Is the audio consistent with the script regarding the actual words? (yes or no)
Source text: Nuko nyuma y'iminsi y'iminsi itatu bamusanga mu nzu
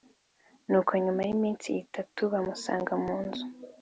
no